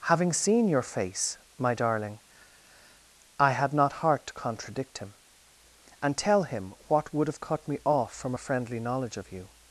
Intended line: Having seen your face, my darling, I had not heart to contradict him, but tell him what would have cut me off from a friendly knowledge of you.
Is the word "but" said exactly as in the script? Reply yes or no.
no